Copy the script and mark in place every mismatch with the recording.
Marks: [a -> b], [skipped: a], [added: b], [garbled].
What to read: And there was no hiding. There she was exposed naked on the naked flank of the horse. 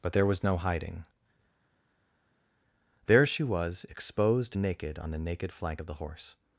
[And -> But] there was no hiding. There she was exposed naked on the naked flank of the horse.